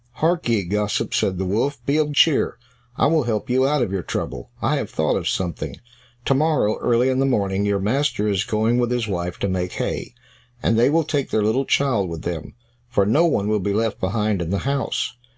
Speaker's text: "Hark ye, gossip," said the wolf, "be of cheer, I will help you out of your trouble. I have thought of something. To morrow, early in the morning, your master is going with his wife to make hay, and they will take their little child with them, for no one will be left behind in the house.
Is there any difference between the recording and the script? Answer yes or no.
no